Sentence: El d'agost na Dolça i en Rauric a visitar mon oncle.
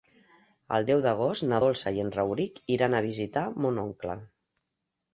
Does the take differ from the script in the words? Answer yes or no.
yes